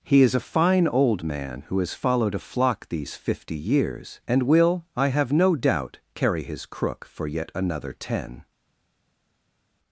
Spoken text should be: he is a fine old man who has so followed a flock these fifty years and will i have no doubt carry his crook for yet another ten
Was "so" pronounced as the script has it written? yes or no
no